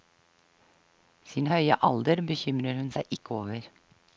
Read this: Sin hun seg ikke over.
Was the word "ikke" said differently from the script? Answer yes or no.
no